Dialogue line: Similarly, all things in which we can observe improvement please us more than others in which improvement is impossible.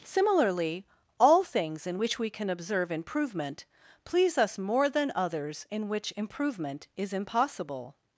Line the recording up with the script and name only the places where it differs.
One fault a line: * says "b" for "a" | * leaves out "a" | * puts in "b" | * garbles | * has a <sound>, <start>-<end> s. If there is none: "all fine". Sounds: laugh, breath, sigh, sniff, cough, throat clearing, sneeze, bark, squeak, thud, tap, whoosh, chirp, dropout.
all fine